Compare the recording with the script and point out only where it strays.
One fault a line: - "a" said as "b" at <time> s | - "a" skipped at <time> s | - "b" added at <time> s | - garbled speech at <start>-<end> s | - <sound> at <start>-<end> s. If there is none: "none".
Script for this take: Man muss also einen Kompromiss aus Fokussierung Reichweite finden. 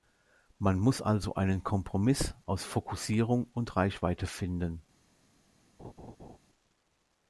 - "und" added at 3.5 s
- laugh at 5.8-6.4 s